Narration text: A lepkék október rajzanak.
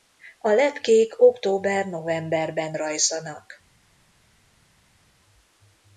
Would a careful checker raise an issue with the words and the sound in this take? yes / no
yes